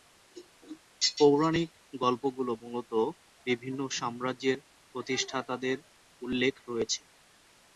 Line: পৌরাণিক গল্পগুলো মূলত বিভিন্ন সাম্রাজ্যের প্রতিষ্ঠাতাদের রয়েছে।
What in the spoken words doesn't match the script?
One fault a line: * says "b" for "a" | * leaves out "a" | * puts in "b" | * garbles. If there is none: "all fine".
* puts in "উল্লেখ"